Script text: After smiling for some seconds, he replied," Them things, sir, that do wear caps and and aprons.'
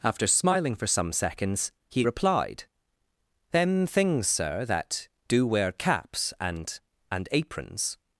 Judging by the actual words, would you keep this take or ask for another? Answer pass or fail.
pass